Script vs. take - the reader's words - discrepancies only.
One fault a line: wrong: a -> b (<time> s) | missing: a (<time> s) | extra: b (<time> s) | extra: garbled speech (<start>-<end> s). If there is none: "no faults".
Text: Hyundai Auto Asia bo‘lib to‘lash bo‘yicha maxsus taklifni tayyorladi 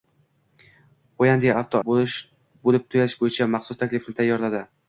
missing: Asia (1.8 s)